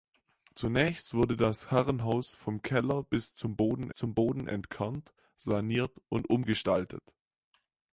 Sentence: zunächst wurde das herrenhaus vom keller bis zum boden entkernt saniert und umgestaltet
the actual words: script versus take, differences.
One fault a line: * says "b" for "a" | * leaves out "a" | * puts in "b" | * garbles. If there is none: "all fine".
* puts in "zum boden"